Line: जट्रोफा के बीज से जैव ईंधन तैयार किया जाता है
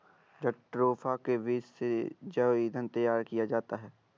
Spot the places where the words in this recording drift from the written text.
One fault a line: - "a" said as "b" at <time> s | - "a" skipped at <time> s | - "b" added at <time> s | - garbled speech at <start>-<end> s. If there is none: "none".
none